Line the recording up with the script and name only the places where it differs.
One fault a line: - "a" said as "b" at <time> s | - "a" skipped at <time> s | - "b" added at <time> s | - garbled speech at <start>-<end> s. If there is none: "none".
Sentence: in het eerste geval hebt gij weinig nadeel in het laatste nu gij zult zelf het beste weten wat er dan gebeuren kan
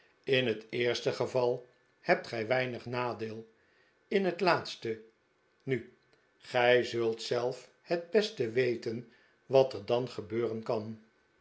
none